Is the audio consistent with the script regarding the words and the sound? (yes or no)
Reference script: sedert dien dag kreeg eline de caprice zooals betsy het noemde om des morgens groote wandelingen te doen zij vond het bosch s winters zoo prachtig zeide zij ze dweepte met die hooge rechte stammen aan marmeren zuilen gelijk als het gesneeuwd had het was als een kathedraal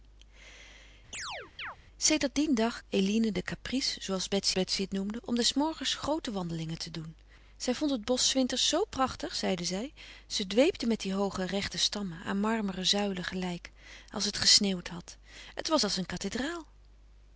no